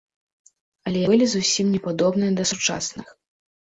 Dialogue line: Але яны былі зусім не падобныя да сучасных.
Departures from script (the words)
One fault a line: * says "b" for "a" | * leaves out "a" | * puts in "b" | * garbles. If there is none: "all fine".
* leaves out "яны"